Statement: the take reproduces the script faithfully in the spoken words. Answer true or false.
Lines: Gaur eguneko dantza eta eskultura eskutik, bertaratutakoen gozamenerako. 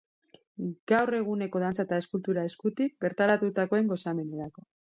true